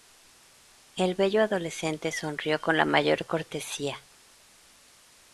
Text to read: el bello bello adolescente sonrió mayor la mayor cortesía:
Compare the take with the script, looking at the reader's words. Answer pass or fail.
fail